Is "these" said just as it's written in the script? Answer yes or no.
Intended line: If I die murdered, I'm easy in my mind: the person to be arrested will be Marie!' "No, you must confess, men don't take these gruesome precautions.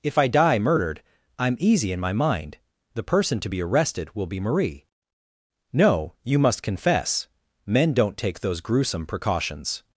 no